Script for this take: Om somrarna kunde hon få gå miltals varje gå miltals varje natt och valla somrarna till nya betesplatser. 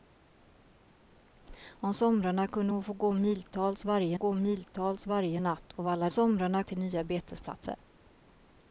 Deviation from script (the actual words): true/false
false